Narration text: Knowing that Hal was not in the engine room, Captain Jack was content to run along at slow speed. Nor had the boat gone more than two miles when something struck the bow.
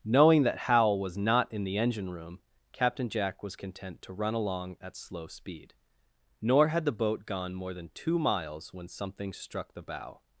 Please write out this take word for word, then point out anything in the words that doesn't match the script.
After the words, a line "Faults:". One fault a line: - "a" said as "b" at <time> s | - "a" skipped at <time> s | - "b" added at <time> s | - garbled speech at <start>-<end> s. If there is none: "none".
Knowing that Hal was not in the engine room, Captain Jack was content to run along at slow speed. Nor had the boat gone more than two miles when something struck the bow.
Faults:
none